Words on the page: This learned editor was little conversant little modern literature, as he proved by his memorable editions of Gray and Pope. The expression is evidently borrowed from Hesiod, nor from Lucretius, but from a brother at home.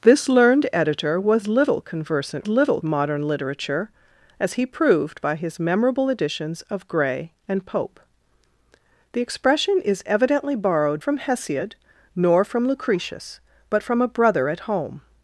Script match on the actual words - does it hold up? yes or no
yes